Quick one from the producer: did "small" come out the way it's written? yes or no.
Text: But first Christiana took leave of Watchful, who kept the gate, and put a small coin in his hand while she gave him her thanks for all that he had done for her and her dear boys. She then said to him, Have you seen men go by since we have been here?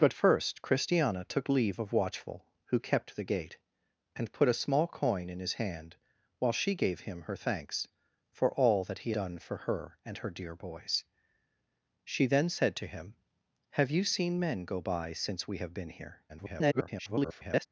yes